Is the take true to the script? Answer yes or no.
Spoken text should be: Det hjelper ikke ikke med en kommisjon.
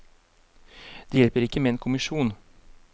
no